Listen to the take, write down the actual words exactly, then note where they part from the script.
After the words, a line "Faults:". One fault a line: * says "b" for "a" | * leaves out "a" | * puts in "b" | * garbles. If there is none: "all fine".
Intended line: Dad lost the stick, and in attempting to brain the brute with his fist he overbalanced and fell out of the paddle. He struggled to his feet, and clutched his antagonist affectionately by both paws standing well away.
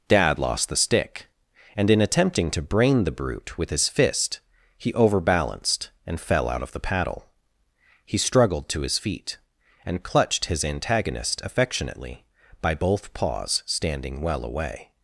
Dad lost the stick, and in attempting to brain the brute with his fist he overbalanced and fell out of the paddle. He struggled to his feet, and clutched his antagonist affectionately by both paws standing well away.
Faults:
all fine